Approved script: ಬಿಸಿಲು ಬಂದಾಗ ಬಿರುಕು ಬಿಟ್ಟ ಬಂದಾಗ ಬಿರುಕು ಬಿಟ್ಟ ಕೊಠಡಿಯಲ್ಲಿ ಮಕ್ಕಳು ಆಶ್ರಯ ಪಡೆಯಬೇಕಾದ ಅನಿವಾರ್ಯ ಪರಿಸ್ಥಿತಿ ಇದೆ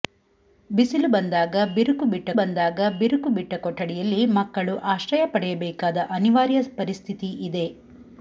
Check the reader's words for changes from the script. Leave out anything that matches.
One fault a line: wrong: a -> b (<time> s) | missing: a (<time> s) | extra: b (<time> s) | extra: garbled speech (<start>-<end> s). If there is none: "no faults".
no faults